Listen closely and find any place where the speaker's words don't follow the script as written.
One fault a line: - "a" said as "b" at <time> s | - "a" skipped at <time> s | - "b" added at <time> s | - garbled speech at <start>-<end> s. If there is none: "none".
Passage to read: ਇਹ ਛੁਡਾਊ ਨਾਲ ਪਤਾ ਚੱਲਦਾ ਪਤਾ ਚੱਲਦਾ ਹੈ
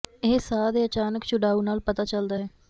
- "ਸਾਹ ਦੇ ਅਚਾਨਕ" added at 0.4 s
- "ਪਤਾ ਚੱਲਦਾ" skipped at 2.4 s